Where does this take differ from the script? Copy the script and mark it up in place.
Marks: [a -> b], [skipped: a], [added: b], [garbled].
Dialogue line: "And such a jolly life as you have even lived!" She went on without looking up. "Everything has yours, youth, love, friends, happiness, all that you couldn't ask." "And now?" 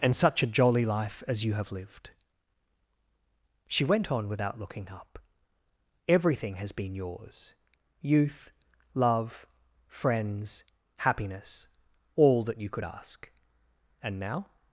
"And such a jolly life as you have [skipped: even] lived!" She went on without looking up. "Everything has [added: been] yours, youth, love, friends, happiness, all that you [couldn't -> could] ask." "And now?"